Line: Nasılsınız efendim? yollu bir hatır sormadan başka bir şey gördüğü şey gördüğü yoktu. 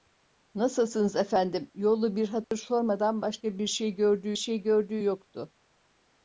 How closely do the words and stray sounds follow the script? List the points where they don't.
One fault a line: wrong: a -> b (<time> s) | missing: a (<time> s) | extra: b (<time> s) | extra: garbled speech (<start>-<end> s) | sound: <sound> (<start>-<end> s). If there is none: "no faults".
sound: dropout (2.4-2.5 s)